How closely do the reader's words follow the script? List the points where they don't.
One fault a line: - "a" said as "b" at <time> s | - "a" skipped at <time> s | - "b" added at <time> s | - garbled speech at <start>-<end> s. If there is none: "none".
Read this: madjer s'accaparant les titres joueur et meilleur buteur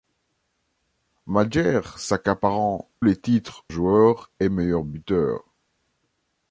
none